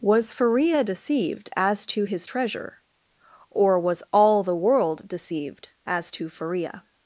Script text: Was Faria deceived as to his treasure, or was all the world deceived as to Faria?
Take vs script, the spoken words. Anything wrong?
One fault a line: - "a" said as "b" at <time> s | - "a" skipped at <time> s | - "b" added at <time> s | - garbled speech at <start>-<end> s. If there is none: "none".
none